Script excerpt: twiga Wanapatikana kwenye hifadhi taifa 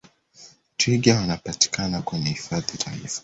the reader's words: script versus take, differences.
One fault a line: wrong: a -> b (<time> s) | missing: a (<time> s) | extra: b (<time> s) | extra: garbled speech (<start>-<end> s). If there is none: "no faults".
no faults